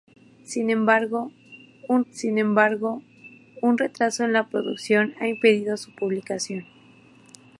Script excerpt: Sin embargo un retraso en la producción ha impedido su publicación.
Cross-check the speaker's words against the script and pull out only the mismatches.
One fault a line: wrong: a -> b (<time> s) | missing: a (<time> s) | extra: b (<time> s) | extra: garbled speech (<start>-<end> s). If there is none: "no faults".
extra: sin embargo un (2.1 s)